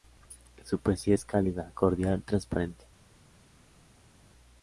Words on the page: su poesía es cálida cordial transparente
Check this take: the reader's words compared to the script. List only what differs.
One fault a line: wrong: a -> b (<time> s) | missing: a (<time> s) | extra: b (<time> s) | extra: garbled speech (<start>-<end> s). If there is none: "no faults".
no faults